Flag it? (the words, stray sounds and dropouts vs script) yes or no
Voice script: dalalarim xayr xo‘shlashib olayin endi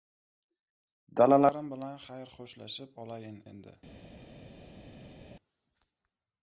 yes